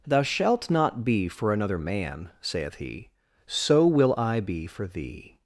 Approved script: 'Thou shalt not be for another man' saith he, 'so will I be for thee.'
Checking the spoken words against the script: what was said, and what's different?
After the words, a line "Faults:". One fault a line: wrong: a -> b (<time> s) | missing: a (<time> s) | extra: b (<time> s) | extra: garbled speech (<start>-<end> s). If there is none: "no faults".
'Thou shalt not be for another man' saith he, 'so will I be for thee.'
Faults:
no faults